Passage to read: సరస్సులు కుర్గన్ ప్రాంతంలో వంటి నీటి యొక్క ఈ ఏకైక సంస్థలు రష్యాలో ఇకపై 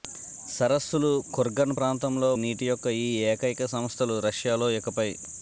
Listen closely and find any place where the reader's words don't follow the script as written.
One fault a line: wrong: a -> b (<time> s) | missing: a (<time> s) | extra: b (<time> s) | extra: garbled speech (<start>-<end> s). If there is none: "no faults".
missing: వంటి (2.3 s)